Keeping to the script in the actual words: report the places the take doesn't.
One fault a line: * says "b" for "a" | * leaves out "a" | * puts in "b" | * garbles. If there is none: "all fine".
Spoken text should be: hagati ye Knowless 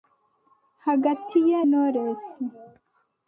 all fine